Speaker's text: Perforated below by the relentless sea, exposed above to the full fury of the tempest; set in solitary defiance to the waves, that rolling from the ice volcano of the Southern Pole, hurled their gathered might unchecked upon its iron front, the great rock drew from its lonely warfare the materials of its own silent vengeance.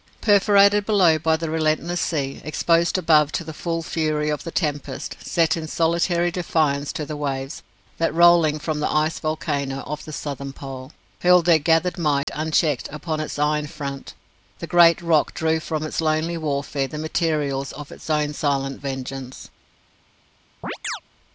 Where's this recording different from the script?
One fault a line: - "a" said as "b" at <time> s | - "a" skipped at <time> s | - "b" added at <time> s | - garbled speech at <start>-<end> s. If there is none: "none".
none